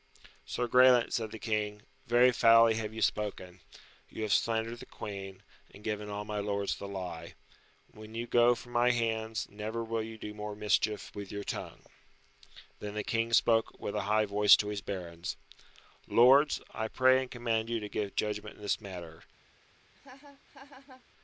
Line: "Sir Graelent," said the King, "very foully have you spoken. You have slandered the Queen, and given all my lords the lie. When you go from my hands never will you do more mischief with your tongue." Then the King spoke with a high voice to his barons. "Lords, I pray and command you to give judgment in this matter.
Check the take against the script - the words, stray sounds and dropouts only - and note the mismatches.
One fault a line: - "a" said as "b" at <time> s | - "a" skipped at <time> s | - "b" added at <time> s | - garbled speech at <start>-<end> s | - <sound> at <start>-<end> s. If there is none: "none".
- laugh at 19.9-21.0 s